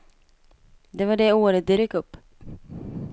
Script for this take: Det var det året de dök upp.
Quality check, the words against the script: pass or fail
pass